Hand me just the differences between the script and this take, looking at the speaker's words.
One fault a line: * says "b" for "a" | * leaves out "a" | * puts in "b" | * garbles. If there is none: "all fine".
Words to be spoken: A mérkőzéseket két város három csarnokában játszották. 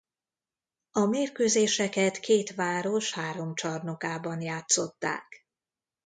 all fine